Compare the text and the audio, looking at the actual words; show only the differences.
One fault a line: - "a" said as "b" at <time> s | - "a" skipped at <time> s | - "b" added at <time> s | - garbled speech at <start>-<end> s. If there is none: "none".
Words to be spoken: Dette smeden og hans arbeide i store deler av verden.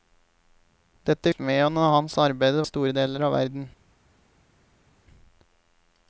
none